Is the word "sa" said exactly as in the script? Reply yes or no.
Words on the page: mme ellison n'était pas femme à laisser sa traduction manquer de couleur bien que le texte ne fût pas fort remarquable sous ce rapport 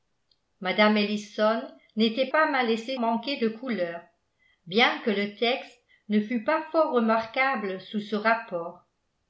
no